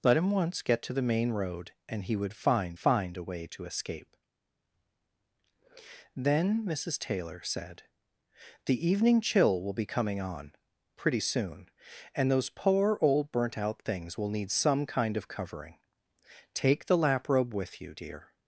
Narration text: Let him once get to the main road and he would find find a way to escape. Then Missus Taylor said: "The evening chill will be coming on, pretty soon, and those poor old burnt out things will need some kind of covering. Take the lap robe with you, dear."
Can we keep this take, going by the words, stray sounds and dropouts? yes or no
yes